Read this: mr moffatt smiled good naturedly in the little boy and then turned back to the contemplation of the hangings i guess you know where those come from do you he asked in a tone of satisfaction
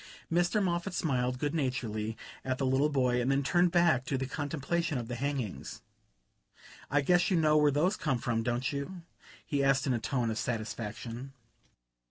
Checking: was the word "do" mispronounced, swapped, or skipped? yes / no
yes